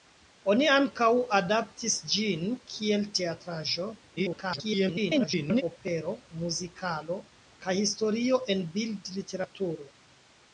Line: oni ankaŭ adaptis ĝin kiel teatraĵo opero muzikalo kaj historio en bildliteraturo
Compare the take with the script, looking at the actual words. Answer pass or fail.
fail